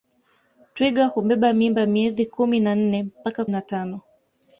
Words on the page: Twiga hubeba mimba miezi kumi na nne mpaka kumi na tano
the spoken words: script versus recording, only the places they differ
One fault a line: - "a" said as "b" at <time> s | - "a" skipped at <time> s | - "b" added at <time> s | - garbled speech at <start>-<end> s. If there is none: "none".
- "kumi" skipped at 3.5 s